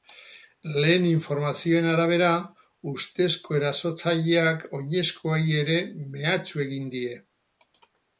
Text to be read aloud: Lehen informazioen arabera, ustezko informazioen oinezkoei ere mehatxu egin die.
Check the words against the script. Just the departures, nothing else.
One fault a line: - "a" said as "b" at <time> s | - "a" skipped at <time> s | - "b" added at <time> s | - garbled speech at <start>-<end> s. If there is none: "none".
- "informazioen" said as "erasotzaileak" at 3.6 s